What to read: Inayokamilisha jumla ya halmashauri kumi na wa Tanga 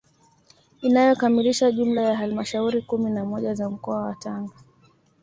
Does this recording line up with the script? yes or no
no